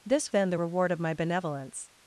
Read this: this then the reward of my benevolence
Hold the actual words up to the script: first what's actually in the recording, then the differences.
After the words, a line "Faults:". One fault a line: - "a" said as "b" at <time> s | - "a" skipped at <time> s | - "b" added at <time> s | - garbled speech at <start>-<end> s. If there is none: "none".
this then the reward of my benevolence
Faults:
none